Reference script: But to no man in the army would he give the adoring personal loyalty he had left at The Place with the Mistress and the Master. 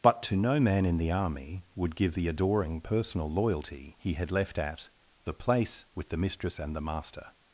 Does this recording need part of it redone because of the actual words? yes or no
yes